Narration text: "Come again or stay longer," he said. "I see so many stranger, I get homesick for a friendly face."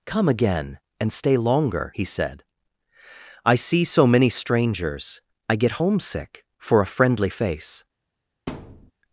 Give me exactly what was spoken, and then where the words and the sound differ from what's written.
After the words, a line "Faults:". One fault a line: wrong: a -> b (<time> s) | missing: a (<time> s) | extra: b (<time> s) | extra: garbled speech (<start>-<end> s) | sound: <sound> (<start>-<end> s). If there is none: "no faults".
"Come again and stay longer," he said. "I see so many strangers, I get homesick for a friendly face."
Faults:
wrong: or -> and (1.0 s)
wrong: stranger -> strangers (4.3 s)
sound: thud (8.5-8.9 s)